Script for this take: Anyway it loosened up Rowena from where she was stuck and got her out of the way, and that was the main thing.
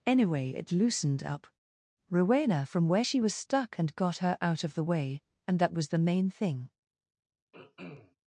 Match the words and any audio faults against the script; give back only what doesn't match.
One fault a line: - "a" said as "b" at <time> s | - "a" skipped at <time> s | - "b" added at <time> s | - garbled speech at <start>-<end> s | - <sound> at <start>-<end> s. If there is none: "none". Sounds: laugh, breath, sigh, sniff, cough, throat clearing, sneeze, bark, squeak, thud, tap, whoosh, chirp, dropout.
- throat clearing at 7.5-8.2 s